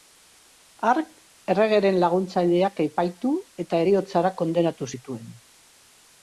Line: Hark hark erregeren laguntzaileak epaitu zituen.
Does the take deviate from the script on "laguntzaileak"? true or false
false